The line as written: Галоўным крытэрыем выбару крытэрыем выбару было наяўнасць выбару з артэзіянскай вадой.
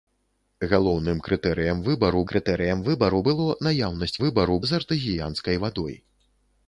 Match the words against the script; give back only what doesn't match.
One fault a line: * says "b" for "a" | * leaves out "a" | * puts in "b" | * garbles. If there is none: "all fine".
all fine